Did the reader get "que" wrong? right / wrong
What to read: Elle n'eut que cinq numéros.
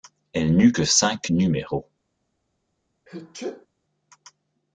right